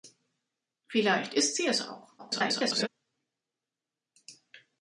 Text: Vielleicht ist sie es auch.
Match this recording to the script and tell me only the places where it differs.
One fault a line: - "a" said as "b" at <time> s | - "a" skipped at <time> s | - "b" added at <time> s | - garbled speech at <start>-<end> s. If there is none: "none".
- garbled speech at 2.2-2.9 s